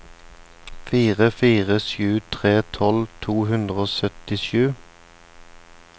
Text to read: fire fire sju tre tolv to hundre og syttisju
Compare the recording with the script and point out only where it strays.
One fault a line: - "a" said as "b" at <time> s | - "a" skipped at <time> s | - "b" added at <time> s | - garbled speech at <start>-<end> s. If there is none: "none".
none